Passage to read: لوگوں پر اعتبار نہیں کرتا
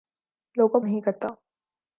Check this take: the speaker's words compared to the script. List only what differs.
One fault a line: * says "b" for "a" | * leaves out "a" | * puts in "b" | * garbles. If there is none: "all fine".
* leaves out "پر اعتبار"